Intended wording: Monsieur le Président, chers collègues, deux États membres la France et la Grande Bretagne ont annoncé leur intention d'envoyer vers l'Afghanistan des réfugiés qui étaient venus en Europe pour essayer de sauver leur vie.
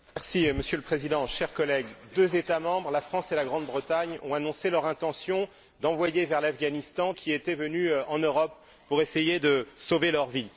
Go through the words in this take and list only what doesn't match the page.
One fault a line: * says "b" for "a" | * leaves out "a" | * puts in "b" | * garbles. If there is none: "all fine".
* leaves out "des réfugiés"